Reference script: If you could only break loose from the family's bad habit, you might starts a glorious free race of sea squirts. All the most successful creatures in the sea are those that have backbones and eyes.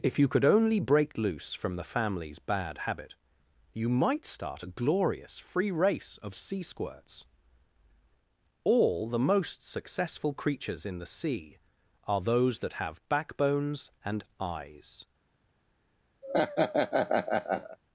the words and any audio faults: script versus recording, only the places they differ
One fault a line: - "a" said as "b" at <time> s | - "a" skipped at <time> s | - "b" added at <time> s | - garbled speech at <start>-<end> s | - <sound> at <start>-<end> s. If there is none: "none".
- "starts" said as "start" at 4.2 s
- laugh at 16.2-17.8 s